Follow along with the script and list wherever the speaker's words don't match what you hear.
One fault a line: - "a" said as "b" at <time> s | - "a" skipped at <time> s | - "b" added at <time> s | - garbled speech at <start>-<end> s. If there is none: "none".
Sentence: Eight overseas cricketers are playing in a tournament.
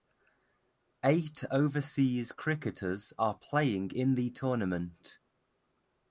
- "a" said as "the" at 4.1 s